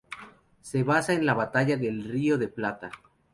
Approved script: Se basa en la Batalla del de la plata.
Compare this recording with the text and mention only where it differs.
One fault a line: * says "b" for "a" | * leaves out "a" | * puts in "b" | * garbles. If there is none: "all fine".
* puts in "río"